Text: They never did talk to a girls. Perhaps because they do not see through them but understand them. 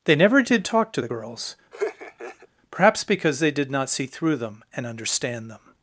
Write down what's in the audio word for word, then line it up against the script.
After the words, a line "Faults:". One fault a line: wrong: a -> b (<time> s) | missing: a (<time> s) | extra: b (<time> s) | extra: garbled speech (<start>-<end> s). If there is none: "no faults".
They never did talk to the girls. Perhaps because they did not see through them and understand them.
Faults:
wrong: a -> the (1.0 s)
wrong: do -> did (3.5 s)
wrong: but -> and (4.8 s)